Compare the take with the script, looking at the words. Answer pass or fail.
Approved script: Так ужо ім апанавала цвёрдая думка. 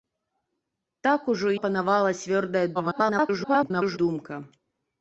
fail